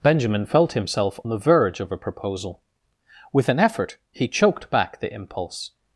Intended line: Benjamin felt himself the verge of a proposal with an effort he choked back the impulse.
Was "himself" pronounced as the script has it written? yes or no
yes